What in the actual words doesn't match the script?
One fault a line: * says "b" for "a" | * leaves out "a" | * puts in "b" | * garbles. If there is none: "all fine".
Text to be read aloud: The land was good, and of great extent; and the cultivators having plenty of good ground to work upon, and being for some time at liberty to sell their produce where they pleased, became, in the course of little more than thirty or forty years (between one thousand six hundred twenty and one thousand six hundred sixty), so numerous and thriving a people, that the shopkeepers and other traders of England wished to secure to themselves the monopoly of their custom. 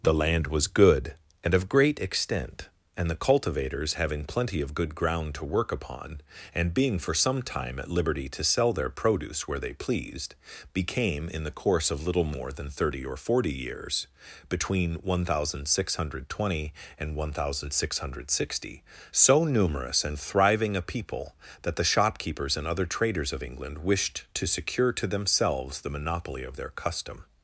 all fine